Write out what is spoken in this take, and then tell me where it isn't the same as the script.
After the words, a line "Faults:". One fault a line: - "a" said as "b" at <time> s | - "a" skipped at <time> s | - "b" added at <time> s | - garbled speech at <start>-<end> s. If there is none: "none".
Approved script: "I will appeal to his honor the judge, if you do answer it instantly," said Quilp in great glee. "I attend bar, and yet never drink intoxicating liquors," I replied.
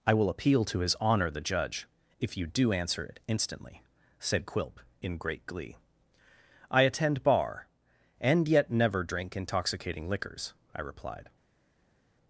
"I will appeal to his honor the judge, if you do answer it instantly," said Quilp in great glee. "I attend bar, and yet never drink intoxicating liquors," I replied.
Faults:
none